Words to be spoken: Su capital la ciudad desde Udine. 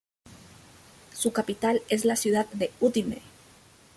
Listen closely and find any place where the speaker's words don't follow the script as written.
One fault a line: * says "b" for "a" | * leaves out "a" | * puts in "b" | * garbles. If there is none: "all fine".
* puts in "es"
* says "de" for "desde"